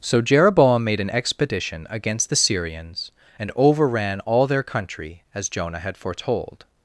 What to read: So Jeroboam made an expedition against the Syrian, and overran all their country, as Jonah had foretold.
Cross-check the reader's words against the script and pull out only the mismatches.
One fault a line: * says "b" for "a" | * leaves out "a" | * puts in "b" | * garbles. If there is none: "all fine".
* says "Syrians" for "Syrian"